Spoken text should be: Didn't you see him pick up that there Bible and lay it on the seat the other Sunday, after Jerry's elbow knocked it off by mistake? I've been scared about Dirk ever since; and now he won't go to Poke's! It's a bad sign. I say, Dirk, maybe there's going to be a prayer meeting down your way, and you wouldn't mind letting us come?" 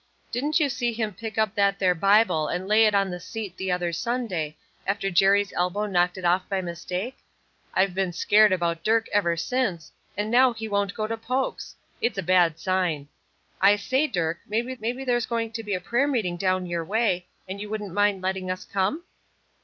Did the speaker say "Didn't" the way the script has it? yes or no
yes